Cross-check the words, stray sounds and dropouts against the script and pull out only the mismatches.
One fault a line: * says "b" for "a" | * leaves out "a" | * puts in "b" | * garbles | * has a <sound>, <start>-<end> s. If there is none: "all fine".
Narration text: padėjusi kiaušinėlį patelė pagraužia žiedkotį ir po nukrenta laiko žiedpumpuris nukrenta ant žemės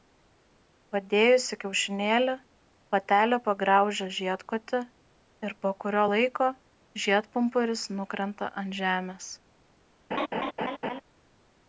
* says "kurio" for "nukrenta"
* has a laugh, 10.1-11.0 s